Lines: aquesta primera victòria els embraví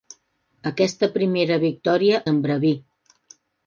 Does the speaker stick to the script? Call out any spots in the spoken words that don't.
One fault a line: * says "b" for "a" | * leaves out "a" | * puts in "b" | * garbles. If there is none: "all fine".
* leaves out "els"